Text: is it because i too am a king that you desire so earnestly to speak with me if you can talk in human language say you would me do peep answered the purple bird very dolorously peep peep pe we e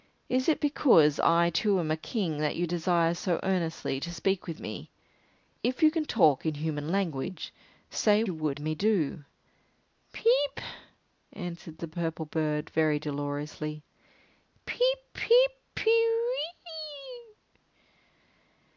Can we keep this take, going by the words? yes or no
yes